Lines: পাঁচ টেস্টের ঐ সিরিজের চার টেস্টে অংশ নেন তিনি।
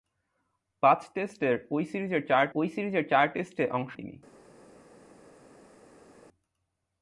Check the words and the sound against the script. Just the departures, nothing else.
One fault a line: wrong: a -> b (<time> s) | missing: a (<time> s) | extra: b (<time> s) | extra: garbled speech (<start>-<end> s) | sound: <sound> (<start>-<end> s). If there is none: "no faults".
extra: ঐ সিরিজের চার (2.6 s)
missing: নেন (3.9 s)